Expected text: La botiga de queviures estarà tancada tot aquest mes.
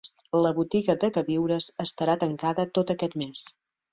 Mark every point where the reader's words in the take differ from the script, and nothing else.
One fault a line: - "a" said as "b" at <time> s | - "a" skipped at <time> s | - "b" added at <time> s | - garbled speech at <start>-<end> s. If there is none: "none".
none